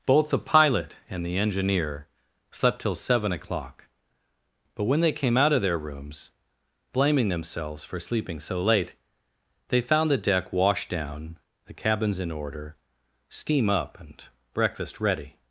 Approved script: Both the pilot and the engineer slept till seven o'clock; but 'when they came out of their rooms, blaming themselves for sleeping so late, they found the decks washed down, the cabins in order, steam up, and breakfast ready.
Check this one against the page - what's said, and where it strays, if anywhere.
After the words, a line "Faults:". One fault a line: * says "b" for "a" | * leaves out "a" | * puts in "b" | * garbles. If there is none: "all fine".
Both the pilot and the engineer slept till seven o'clock; but 'when they came out of their rooms, blaming themselves for sleeping so late, they found the deck washed down, the cabins in order, steam up, and breakfast ready.
Faults:
* says "deck" for "decks"